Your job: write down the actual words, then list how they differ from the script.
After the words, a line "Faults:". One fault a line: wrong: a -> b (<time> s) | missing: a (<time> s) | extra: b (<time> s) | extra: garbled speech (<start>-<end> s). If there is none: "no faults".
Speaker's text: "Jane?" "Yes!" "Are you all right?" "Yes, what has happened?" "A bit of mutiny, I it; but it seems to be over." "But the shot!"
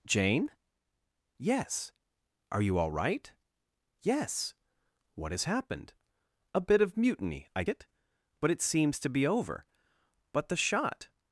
"Jane?" "Yes!" "Are you all right?" "Yes, what has happened?" "A bit of mutiny, I it; but it seems to be over." "But the shot!"
Faults:
no faults